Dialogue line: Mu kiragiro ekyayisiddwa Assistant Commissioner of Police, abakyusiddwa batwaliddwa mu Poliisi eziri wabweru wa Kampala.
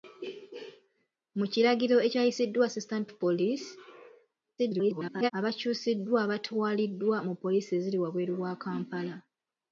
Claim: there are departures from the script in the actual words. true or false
true